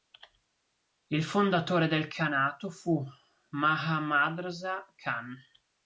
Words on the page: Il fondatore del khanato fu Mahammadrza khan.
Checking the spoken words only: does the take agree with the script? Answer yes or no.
yes